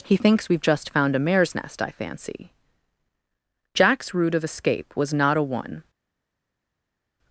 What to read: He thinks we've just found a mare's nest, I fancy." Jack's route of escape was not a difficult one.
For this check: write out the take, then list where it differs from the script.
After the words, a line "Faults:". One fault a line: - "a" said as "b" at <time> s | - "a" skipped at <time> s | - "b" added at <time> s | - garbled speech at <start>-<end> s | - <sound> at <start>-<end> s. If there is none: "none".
He thinks we've just found a mare's nest, I fancy." Jack's route of escape was not a one.
Faults:
- "difficult" skipped at 5.4 s